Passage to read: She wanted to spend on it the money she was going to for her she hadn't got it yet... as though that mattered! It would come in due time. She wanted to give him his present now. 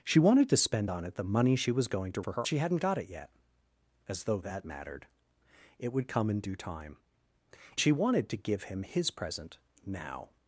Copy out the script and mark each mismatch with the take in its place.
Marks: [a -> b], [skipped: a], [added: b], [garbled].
She wanted to spend on it the money she was going to for her she hadn't got it yet... as though that mattered! It would come in due time. She wanted to give him his present now.